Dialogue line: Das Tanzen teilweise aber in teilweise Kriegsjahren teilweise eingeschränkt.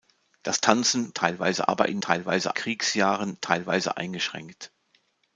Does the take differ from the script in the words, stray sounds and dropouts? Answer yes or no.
no